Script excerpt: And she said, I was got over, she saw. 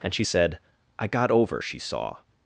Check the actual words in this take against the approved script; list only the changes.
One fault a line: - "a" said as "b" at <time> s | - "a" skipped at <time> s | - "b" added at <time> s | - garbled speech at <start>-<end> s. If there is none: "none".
- "was" skipped at 1.1 s